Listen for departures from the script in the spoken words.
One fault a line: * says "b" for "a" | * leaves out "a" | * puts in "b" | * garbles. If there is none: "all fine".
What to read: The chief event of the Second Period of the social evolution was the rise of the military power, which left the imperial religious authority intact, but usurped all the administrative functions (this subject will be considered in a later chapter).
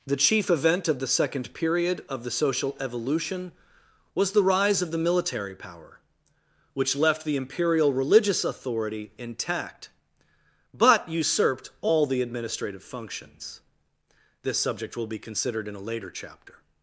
all fine